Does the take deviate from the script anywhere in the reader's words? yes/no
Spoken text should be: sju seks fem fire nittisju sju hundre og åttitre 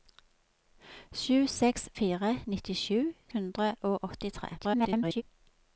yes